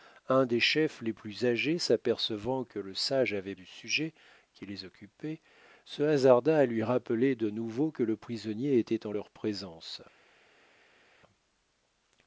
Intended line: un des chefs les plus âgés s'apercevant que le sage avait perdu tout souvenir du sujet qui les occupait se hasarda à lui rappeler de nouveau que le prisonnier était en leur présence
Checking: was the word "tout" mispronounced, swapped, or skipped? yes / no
yes